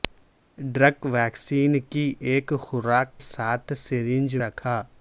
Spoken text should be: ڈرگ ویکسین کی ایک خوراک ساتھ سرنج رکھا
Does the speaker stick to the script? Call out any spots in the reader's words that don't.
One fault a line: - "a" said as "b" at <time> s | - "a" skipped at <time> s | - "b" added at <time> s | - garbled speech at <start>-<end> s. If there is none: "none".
none